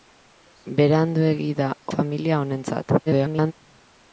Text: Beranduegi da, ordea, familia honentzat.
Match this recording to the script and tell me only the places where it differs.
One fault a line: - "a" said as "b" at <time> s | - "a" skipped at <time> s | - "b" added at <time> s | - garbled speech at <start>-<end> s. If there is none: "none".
- "ordea" skipped at 1.7 s
- garbled speech at 3.1-3.5 s